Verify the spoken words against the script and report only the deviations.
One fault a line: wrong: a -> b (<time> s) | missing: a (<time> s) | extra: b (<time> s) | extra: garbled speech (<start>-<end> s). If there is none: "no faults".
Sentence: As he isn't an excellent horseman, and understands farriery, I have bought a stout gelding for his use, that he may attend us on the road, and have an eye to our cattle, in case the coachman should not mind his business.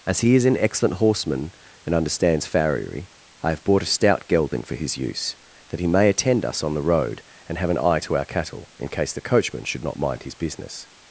wrong: isn't -> is (0.3 s)